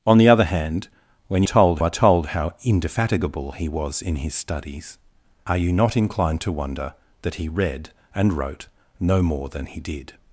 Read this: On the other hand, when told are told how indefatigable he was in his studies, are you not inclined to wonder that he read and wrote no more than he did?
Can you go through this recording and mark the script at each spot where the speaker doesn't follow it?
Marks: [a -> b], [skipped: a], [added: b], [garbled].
On the other hand, when told are told how indefatigable he was in his studies, are you not inclined to wonder that he read and wrote no more than he did?